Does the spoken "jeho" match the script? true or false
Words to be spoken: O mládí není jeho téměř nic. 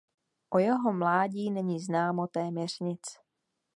false